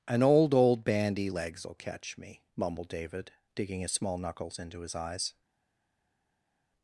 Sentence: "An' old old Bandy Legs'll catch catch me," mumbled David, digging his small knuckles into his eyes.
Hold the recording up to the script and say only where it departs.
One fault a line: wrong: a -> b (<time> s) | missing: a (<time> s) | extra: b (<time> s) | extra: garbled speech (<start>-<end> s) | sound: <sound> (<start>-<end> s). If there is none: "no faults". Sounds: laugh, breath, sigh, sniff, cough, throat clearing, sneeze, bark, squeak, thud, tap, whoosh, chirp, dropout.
missing: catch (2.2 s)